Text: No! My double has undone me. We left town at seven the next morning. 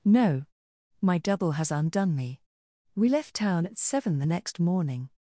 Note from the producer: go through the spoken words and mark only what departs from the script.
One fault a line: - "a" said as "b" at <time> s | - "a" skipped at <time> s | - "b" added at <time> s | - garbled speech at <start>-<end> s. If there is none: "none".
none